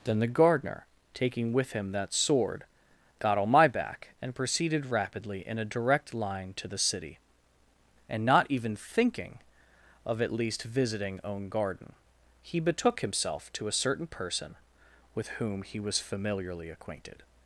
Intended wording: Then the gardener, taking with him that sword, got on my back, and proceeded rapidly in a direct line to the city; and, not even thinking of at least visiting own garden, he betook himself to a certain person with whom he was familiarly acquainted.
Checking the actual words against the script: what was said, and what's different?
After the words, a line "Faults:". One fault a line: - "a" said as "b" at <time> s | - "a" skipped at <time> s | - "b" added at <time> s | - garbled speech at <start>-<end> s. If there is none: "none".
Then the gardener, taking with him that sword, got on my back, and proceeded rapidly in a direct line to the city; and, not even thinking of at least visiting own garden, he betook himself to a certain person with whom he was familiarly acquainted.
Faults:
none